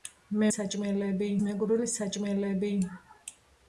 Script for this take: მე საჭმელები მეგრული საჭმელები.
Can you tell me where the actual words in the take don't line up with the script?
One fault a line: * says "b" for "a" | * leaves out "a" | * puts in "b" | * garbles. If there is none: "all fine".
all fine